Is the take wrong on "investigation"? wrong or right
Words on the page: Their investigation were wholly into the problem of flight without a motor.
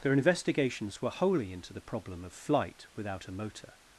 wrong